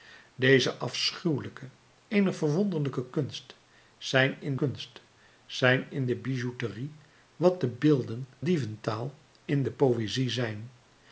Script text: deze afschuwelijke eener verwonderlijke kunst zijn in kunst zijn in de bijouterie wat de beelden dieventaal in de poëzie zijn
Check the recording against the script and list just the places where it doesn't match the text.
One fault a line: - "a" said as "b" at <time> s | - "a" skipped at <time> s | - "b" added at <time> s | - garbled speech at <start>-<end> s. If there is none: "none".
none